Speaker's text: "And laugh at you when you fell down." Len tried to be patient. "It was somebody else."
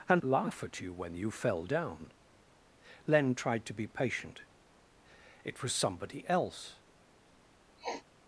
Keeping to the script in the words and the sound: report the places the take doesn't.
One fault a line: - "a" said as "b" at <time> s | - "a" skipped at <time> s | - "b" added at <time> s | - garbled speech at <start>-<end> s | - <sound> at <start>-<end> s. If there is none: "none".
- sniff at 7.8-8.0 s